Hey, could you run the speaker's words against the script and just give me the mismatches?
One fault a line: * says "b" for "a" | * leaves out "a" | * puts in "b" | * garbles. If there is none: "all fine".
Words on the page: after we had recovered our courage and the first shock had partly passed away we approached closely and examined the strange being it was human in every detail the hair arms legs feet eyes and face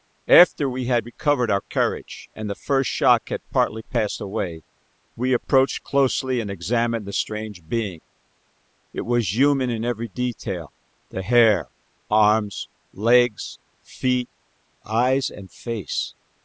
all fine